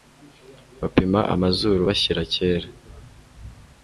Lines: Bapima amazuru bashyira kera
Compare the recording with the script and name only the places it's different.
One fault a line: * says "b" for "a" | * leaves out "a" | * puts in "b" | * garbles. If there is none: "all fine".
all fine